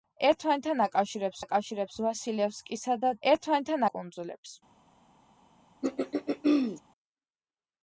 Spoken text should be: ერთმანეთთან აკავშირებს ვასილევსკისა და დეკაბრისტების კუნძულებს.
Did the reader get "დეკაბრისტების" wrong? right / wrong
wrong